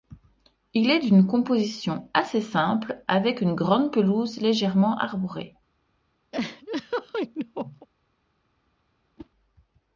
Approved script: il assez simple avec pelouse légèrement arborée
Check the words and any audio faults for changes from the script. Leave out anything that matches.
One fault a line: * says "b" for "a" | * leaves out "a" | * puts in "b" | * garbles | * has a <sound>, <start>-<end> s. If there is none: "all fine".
* puts in "est d'une composition"
* puts in "une grande"
* has a laugh, 6.3-7.9 s
* has a whoosh, 9.2-9.3 s